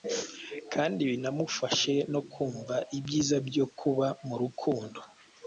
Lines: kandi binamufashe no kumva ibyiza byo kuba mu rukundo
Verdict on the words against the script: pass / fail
pass